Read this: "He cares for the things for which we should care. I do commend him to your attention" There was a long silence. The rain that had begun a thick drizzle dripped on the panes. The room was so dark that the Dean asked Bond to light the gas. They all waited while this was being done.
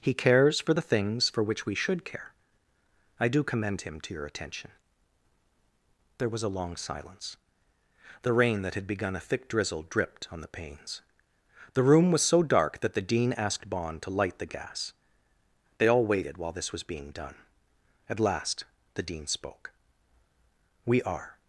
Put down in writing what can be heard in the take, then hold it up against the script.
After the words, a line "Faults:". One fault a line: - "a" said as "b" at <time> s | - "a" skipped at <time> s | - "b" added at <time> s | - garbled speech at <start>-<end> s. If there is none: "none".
"He cares for the things for which we should care. I do commend him to your attention" There was a long silence. The rain that had begun a thick drizzle dripped on the panes. The room was so dark that the Dean asked Bond to light the gas. They all waited while this was being done. At last the Dean spoke: "We are
Faults:
- "At last the Dean spoke We are" added at 18.1 s